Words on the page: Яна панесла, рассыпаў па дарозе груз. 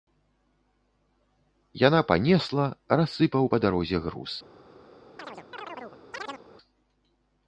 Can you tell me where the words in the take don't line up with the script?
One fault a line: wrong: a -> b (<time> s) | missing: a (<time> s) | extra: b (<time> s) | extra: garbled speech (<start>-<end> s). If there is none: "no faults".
no faults